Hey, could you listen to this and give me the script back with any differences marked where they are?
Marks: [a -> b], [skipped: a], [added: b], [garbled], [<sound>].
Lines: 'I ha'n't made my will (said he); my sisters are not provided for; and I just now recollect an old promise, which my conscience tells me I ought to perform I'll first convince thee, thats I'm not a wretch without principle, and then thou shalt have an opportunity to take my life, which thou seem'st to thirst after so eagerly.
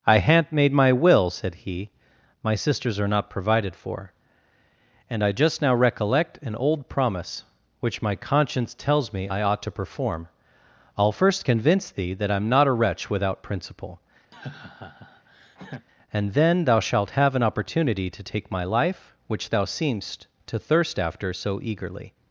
'I ha'n't made my will (said he); my sisters are not provided for; and I just now recollect an old promise, which my conscience tells me I ought to perform I'll first convince thee, [thats -> that] I'm not a wretch without principle, [laugh] and then thou shalt have an opportunity to take my life, which thou seem'st to thirst after so eagerly.